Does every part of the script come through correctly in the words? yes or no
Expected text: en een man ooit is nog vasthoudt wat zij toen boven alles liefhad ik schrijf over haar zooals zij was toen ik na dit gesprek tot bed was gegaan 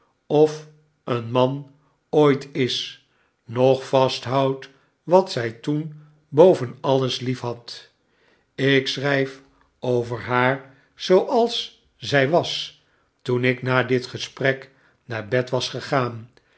no